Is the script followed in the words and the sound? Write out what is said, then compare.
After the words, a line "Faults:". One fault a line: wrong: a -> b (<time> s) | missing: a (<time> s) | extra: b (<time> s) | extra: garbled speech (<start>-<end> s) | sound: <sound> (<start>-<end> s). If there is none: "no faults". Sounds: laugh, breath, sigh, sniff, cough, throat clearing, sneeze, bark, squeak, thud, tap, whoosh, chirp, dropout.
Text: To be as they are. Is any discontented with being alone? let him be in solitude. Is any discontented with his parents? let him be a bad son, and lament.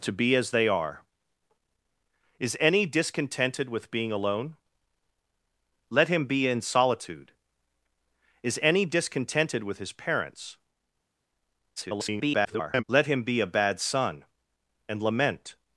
To be as they are. Is any discontented with being alone? let him be in solitude. Is any discontented with his parents? [garbled] let him be a bad son, and lament.
Faults:
extra: garbled speech (11.8-12.8 s)